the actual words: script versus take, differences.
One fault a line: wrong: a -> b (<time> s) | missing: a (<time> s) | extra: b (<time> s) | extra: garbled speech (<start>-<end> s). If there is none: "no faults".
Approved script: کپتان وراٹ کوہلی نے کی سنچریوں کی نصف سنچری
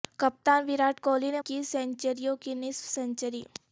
no faults